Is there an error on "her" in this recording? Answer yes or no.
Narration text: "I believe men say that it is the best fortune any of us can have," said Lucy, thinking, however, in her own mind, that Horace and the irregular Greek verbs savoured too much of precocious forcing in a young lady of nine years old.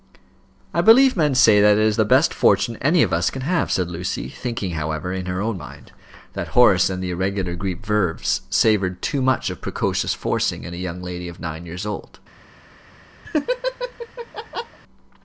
no